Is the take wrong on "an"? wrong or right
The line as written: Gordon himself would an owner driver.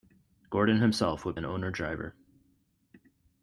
right